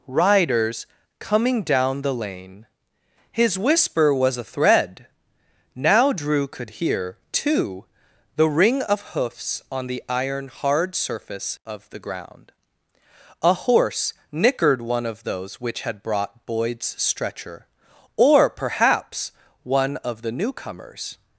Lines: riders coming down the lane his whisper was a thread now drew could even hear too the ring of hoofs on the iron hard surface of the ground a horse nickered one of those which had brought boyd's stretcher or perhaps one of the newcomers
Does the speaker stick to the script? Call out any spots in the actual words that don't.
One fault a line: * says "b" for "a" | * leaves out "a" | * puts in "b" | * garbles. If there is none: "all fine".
* leaves out "even"